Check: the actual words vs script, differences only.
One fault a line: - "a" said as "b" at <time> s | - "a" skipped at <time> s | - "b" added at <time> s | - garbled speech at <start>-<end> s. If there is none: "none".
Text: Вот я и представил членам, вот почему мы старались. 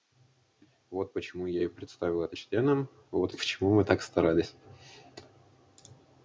- "почему" added at 1.1 s
- "это" added at 2.2 s
- "так" added at 3.8 s